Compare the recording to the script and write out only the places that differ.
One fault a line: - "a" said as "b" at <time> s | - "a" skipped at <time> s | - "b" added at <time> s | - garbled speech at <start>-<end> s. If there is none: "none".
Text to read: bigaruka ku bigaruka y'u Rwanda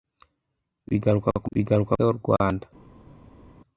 none